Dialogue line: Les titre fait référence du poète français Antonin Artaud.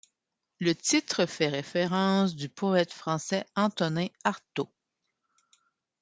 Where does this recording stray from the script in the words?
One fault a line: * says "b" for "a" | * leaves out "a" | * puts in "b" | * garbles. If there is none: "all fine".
* says "Le" for "Les"